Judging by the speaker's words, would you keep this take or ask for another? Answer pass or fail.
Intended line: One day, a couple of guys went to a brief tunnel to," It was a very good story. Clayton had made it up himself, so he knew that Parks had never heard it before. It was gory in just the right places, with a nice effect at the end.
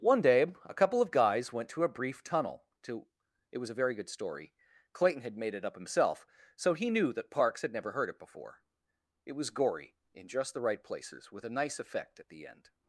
pass